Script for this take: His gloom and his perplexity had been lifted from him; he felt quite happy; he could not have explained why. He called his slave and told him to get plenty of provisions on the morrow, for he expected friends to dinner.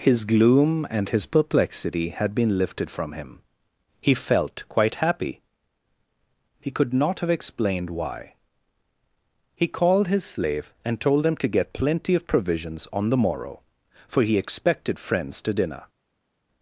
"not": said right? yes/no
yes